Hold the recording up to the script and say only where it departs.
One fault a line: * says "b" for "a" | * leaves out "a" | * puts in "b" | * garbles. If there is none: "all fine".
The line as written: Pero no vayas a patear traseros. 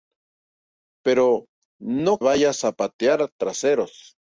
all fine